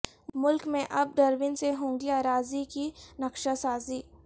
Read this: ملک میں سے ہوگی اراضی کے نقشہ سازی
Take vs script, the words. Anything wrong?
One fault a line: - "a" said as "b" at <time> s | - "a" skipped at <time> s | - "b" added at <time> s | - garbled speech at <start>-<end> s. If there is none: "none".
- "اب ڈرون" added at 0.9 s
- "کے" said as "کی" at 2.7 s